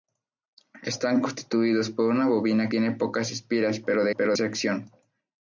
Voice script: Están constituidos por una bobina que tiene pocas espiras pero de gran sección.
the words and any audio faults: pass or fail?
fail